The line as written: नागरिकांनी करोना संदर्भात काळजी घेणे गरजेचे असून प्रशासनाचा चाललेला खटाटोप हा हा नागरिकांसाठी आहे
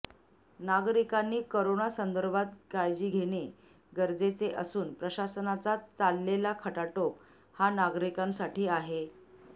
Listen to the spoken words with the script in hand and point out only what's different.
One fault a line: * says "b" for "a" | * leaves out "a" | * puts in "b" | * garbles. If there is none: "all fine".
* leaves out "हा"